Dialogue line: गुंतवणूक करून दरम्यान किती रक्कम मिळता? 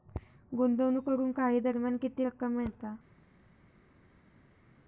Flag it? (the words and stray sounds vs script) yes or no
yes